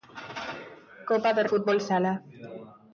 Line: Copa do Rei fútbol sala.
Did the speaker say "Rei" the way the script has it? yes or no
no